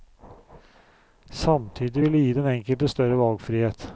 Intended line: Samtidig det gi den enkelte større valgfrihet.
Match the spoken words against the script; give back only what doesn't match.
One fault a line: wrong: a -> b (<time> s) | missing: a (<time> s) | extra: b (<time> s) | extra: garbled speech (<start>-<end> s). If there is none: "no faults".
extra: vil (2.0 s)